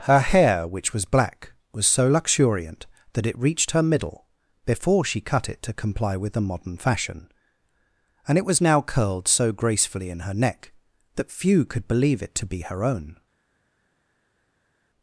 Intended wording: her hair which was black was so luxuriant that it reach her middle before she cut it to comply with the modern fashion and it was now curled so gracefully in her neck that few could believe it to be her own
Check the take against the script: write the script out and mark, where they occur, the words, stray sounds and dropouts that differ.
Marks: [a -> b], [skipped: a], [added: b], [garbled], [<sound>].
her hair which was black was so luxuriant that it [reach -> reached] her middle before she cut it to comply with the modern fashion and it was now curled so gracefully in her neck that few could believe it to be her own